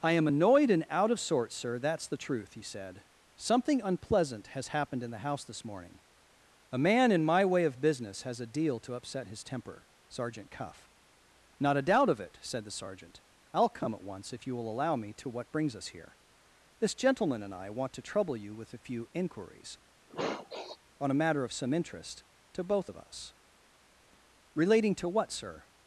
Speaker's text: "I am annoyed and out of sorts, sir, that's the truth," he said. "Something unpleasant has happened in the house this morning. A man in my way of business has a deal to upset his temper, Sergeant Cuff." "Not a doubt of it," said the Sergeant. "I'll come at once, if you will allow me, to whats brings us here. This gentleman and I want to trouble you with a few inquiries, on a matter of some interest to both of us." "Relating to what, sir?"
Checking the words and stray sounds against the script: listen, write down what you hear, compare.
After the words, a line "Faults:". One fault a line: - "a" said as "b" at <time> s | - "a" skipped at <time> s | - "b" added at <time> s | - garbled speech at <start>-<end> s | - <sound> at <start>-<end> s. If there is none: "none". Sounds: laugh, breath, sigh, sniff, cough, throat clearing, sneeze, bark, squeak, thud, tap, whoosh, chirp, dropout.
"I am annoyed and out of sorts, sir, that's the truth," he said. "Something unpleasant has happened in the house this morning. A man in my way of business has a deal to upset his temper, Sergeant Cuff." "Not a doubt of it," said the Sergeant. "I'll come at once, if you will allow me, to what brings us here. This gentleman and I want to trouble you with a few inquiries, on a matter of some interest to both of us." "Relating to what, sir?"
Faults:
- "whats" said as "what" at 15.3 s
- sniff at 20.1-20.8 s